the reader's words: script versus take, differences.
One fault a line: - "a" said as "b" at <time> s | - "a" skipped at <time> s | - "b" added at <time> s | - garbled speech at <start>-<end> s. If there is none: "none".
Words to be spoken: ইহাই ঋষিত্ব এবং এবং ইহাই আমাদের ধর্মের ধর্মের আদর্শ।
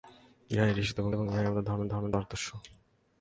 none